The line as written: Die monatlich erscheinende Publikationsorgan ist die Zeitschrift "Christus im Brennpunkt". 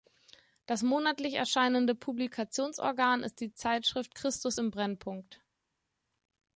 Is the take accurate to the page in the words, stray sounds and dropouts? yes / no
no